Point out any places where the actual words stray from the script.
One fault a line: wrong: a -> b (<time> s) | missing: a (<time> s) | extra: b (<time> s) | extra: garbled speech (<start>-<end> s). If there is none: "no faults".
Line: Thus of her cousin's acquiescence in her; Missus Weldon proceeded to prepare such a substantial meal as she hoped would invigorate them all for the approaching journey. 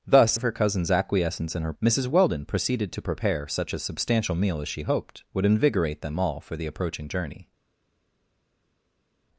no faults